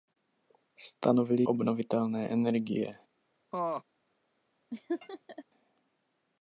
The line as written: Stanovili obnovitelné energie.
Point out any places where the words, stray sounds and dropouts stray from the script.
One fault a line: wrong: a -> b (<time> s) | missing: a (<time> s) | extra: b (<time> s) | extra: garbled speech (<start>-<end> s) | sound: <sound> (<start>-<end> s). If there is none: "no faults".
sound: laugh (3.5-3.8 s)
sound: laugh (4.7-5.4 s)